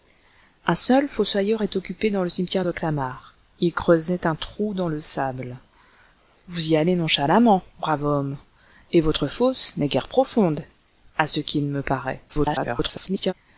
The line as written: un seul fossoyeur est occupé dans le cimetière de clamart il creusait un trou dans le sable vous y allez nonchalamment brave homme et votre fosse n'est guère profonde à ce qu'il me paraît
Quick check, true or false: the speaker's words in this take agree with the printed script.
false